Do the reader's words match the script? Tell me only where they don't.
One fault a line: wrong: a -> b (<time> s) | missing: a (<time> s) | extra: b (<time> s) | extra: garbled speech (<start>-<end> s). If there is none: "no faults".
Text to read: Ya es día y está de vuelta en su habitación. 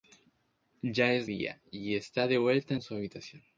no faults